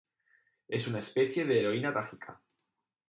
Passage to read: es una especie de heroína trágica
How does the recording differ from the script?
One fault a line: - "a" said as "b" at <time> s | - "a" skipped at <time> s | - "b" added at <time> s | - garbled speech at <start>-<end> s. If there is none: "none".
none